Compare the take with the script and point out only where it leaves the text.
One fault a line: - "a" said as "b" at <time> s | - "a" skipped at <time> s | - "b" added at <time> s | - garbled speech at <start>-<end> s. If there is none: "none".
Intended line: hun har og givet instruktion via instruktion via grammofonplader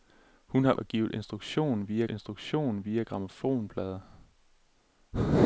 none